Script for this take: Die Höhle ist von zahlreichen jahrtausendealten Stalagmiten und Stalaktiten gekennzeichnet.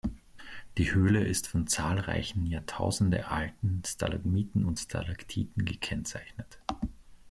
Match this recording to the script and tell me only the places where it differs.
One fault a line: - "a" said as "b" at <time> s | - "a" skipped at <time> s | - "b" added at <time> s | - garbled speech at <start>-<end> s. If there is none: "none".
none